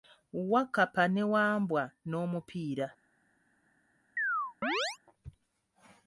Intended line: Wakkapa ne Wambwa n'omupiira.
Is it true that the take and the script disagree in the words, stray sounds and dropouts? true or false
true